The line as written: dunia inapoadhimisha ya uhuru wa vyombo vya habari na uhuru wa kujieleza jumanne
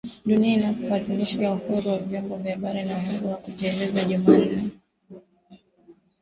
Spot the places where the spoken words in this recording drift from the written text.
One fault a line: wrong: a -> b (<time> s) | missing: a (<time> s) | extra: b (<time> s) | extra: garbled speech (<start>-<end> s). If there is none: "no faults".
no faults